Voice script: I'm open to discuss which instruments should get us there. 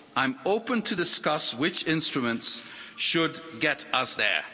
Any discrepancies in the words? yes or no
no